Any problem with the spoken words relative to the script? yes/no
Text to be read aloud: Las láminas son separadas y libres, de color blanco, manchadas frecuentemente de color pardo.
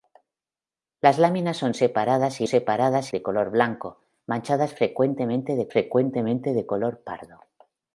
yes